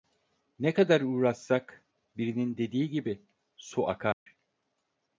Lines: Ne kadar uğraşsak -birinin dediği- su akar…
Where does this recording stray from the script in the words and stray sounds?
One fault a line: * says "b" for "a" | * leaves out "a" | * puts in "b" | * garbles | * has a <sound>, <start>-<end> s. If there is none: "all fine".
* puts in "gibi"
* has a dropout, 4.1-4.3 s